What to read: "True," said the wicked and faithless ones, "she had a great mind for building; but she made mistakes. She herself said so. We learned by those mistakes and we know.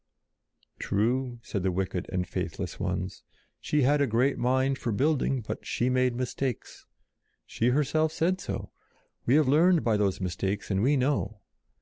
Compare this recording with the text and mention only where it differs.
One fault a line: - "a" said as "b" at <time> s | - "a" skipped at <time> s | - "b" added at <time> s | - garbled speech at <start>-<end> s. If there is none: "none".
- "have" added at 9.3 s